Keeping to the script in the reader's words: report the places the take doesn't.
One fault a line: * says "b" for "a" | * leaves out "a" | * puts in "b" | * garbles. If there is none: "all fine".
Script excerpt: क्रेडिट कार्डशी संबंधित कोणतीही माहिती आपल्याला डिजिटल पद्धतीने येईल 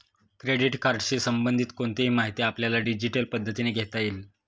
* puts in "घेता"